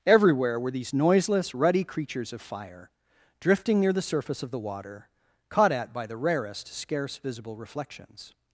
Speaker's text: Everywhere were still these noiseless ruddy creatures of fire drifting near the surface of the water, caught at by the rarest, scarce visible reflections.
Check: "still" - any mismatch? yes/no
yes